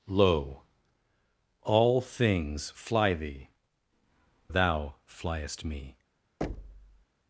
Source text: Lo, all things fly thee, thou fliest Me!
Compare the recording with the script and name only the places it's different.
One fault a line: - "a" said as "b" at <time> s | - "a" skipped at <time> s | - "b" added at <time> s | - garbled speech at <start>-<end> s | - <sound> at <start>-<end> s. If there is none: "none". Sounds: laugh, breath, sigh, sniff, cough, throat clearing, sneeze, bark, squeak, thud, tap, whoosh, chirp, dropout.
- thud at 6.4-7.1 s